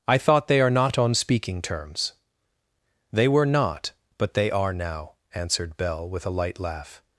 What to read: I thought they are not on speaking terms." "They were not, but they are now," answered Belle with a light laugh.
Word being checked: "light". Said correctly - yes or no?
yes